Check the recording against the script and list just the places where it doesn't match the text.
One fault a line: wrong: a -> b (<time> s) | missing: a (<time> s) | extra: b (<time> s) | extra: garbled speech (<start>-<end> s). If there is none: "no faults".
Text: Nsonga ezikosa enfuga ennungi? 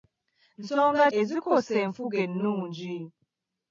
no faults